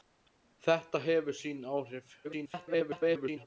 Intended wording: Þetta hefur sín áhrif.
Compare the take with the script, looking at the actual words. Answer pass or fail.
fail